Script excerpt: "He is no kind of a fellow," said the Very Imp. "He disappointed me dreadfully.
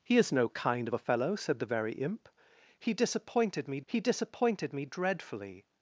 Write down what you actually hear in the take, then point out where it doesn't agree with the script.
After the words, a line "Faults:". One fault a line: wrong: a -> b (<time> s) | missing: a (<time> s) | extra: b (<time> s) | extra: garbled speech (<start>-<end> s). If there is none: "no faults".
"He is no kind of a fellow," said the Very Imp. "He disappointed me he disappointed me dreadfully.
Faults:
extra: he disappointed me (3.9 s)